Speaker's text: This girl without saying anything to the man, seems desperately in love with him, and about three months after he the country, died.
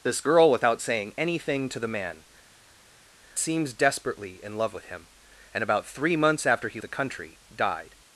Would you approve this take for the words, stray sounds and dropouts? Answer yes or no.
yes